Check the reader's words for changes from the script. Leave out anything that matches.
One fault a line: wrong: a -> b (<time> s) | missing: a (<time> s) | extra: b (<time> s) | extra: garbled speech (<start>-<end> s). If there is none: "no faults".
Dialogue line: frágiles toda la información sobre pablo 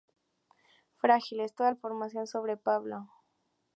missing: la (1.7 s)